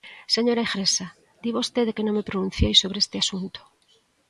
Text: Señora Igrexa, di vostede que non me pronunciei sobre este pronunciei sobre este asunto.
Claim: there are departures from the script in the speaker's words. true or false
true